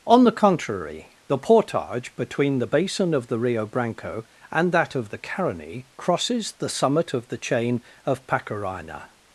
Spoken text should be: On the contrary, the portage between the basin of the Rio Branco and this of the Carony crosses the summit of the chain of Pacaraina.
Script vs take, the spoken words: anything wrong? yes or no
yes